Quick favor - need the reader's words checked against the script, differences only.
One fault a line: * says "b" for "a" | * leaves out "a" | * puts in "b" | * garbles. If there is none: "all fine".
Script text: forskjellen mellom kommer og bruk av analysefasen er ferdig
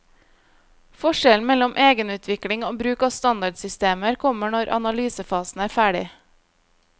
* says "egenutvikling" for "kommer"
* puts in "standardsystemer kommer når"